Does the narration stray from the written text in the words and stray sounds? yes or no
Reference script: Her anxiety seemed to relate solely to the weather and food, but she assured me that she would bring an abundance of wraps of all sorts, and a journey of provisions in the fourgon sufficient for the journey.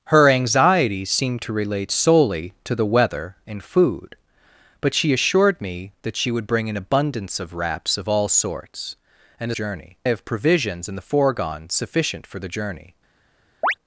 yes